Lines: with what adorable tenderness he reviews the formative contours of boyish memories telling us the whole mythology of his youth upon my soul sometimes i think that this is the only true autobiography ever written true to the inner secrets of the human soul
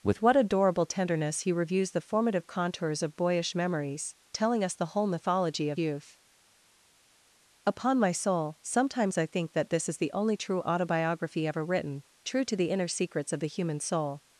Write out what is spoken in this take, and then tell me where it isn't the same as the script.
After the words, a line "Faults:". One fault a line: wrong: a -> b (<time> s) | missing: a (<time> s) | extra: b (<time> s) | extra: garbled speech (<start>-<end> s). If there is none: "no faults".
with what adorable tenderness he reviews the formative contours of boyish memories telling us the whole mythology of youth upon my soul sometimes i think that this is the only true autobiography ever written true to the inner secrets of the human soul
Faults:
missing: his (5.8 s)